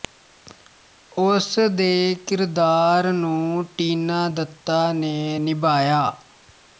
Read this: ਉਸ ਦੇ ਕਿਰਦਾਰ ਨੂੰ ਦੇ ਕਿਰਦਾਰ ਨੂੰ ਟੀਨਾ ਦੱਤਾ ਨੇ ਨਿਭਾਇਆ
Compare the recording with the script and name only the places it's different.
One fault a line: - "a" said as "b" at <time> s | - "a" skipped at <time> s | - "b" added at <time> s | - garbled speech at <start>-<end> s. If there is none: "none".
- "ਦੇ ਕਿਰਦਾਰ ਨੂੰ" skipped at 3.6 s